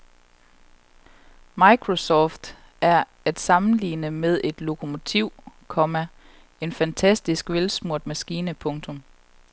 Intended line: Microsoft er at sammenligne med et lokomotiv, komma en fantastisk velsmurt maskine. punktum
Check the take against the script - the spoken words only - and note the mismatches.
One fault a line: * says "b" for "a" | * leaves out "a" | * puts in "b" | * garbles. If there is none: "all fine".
all fine